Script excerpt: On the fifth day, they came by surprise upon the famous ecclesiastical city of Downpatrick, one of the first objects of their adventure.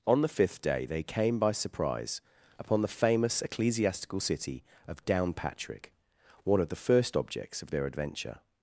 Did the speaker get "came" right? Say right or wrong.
right